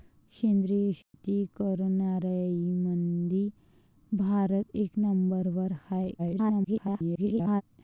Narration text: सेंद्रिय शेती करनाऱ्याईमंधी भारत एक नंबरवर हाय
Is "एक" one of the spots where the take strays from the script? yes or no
no